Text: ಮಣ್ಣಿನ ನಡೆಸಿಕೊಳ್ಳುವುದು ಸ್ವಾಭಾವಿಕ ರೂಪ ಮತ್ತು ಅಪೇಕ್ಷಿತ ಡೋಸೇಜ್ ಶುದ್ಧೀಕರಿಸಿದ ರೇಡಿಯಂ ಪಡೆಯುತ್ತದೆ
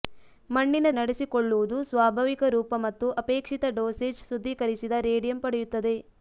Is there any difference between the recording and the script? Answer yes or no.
no